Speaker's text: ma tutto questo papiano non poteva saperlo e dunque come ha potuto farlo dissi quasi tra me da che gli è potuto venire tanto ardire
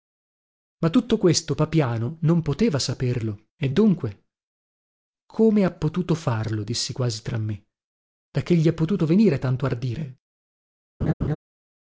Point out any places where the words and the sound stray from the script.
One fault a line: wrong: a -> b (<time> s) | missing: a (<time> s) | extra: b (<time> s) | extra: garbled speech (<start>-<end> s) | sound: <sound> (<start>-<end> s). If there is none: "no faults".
sound: laugh (11.0-11.4 s)